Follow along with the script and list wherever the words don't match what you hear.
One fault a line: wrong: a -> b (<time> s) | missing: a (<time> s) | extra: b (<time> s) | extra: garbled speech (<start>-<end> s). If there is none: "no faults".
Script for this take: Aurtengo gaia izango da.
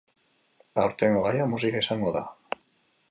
extra: musika (1.6 s)